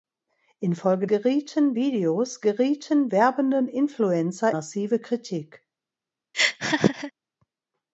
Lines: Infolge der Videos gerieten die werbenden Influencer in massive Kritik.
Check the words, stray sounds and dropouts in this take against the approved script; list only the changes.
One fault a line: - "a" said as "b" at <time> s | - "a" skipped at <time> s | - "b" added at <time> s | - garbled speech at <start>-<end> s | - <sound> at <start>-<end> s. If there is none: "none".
- "der" said as "gerieten" at 1.1 s
- "die" skipped at 3.1 s
- "in" skipped at 4.5 s
- laugh at 6.3-7.1 s